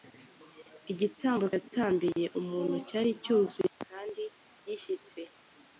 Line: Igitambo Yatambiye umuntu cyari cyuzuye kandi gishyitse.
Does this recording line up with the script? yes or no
yes